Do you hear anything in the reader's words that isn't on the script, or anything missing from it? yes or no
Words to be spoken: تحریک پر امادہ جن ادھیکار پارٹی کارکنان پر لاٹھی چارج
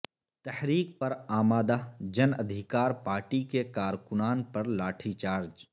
yes